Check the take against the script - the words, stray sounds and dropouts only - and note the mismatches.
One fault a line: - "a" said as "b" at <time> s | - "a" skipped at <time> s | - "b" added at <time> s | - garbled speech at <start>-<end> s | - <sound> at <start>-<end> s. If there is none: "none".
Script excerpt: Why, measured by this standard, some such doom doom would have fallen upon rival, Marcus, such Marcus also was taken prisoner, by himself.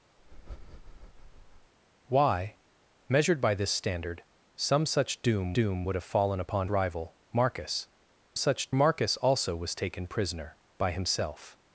- breath at 0.2-1.7 s